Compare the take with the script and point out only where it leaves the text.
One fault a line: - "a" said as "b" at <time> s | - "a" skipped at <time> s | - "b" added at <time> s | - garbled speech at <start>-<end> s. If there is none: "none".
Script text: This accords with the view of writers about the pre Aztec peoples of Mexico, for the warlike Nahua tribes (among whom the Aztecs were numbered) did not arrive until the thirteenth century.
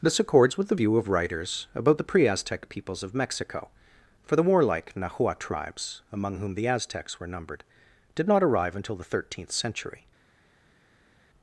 none